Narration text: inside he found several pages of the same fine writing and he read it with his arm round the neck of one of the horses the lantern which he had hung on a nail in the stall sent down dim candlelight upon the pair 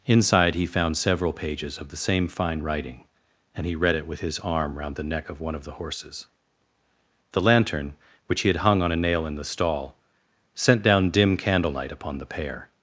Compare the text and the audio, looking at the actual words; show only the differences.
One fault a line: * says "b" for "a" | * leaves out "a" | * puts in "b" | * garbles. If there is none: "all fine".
all fine